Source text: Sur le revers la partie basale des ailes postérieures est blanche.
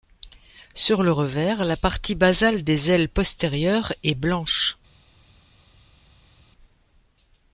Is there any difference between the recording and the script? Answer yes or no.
no